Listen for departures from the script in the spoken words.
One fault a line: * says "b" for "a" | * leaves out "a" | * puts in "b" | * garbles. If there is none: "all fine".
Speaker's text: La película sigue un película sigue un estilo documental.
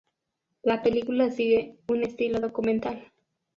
* leaves out "película sigue un"